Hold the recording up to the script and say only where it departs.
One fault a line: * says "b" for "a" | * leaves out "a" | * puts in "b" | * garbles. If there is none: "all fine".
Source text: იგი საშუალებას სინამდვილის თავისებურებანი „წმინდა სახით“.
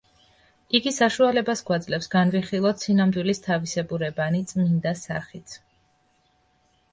* puts in "გვაძლევს განვიხილოთ"